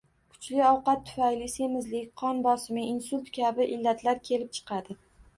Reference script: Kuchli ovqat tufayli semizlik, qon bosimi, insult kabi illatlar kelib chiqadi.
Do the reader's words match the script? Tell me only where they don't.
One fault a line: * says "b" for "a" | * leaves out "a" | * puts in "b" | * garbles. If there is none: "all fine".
all fine